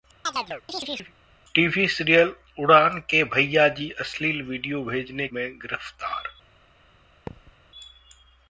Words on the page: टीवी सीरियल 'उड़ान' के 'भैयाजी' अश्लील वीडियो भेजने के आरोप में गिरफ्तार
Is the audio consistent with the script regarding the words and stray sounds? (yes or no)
no